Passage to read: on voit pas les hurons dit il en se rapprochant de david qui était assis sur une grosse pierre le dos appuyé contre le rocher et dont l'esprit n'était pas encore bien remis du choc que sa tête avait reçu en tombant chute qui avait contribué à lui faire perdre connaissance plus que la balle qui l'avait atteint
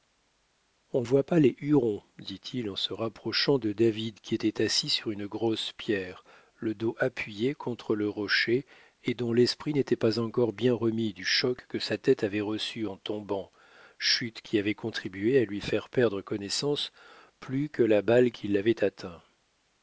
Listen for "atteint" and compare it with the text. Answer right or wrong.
right